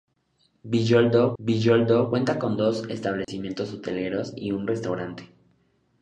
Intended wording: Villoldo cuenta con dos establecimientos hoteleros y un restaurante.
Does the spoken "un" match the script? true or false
true